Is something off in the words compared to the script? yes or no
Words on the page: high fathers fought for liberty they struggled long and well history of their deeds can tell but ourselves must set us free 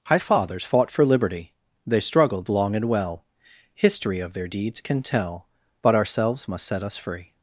no